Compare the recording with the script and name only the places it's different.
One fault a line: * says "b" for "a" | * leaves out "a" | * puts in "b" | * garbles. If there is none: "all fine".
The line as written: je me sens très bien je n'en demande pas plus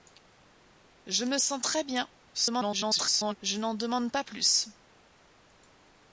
* garbles